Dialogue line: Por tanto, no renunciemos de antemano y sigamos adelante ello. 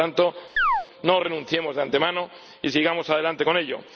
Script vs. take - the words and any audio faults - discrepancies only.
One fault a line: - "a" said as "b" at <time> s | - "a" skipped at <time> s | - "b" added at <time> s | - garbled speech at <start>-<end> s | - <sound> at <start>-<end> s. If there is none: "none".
- chirp at 0.6-0.9 s
- "con" added at 3.4 s